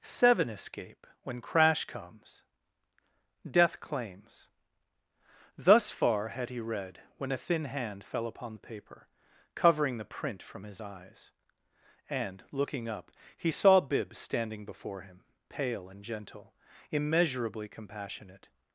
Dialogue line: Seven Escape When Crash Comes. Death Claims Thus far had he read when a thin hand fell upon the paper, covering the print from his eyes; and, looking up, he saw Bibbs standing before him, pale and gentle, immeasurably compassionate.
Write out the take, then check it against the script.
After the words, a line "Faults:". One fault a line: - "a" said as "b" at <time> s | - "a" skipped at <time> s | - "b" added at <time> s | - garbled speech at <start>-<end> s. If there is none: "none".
Seven Escape When Crash Comes. Death Claims Thus far had he read when a thin hand fell upon the paper, covering the print from his eyes; and, looking up, he saw Bibbs standing before him, pale and gentle, immeasurably compassionate.
Faults:
none